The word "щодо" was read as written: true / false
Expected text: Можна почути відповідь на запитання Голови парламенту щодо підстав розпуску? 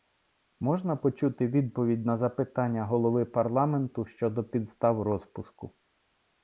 true